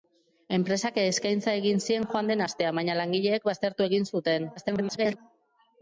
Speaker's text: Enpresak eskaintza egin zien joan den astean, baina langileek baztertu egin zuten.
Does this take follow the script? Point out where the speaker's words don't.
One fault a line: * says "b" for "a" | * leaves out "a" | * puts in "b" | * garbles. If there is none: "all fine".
* garbles